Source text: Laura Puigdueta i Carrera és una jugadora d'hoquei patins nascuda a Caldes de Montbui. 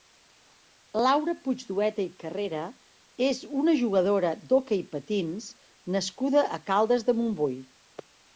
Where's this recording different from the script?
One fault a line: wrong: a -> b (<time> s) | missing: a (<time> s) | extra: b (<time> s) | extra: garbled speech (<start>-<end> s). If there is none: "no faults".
no faults